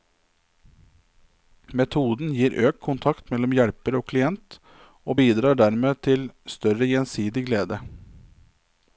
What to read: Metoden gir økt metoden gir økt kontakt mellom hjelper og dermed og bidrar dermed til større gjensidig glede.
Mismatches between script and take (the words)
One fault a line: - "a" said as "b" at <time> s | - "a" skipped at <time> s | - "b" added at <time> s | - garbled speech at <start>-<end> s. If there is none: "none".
- "metoden gir økt" skipped at 2.8 s
- "dermed" said as "klient" at 4.1 s